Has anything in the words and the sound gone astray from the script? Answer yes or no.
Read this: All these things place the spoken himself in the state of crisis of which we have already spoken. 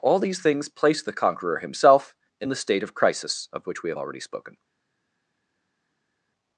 yes